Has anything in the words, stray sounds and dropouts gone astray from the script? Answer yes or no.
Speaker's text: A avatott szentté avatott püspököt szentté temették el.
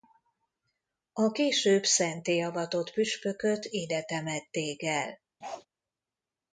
yes